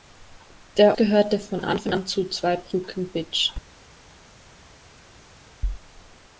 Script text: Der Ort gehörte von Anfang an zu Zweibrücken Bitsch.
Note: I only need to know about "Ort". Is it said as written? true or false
false